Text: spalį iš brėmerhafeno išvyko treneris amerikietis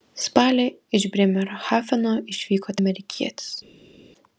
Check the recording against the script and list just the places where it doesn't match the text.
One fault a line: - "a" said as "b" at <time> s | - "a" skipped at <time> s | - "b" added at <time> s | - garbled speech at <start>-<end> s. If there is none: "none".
- "treneris" skipped at 2.8 s